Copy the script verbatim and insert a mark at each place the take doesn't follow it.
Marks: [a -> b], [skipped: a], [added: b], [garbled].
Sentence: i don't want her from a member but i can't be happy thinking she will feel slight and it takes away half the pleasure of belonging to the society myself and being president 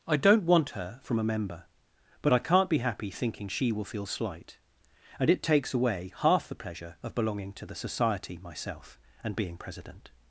i don't want her from a member but i can't be happy thinking she will feel slight and it takes away half the pleasure of belonging to the society myself and being president